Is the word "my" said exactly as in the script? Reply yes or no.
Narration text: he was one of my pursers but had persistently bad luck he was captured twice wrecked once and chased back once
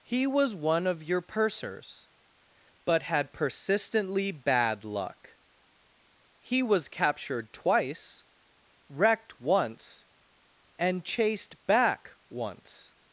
no